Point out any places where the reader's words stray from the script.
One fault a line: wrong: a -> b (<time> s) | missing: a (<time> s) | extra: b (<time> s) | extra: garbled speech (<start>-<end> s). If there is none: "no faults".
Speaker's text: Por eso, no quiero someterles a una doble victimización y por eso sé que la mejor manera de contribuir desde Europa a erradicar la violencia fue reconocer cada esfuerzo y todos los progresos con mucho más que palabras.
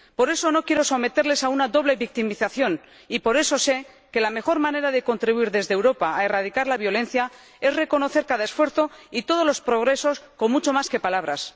wrong: fue -> es (7.6 s)